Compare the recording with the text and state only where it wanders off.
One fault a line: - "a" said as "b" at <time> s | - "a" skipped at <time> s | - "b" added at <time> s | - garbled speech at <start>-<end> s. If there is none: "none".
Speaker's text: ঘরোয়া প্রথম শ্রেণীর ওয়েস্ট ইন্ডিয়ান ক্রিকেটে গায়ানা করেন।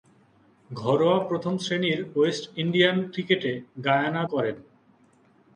none